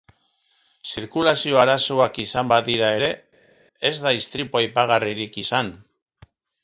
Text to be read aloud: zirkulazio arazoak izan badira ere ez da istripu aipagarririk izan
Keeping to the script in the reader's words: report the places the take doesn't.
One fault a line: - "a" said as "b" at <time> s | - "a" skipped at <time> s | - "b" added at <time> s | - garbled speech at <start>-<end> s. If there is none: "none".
none